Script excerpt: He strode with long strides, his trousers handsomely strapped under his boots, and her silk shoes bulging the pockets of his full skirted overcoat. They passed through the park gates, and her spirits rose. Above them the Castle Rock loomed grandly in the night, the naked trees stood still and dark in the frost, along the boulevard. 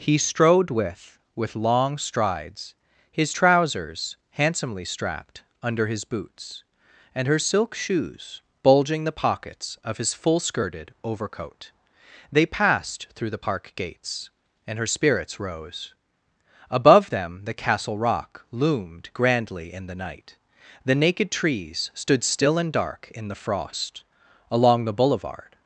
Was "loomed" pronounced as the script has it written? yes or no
yes